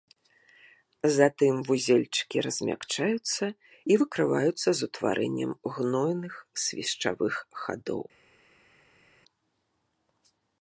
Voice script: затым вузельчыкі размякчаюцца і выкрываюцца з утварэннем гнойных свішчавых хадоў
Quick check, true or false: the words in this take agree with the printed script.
true